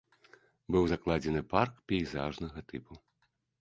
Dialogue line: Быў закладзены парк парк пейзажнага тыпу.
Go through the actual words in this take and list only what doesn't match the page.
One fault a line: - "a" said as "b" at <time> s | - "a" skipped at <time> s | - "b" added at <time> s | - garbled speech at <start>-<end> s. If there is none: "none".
- "парк" skipped at 1.8 s